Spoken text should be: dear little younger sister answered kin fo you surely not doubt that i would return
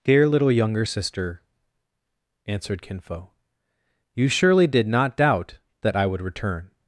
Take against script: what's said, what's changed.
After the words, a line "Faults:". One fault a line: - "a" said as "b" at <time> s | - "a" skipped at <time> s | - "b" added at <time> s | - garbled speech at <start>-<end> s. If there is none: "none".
dear little younger sister answered kin fo you surely did not doubt that i would return
Faults:
- "did" added at 4.6 s